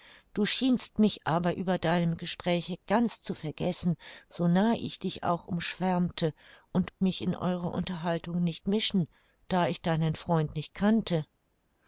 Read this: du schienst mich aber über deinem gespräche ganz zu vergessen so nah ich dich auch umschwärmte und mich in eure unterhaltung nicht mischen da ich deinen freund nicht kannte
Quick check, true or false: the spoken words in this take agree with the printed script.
true